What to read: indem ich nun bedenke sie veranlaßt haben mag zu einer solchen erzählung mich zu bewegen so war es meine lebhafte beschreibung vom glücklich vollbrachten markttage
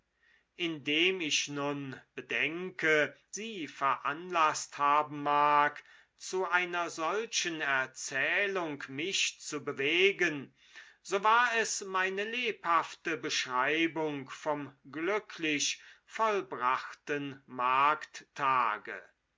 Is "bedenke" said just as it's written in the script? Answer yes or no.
yes